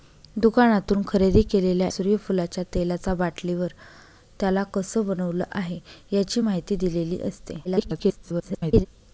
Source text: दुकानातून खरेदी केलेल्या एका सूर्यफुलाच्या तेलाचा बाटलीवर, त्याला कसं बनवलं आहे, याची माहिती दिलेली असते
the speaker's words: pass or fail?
fail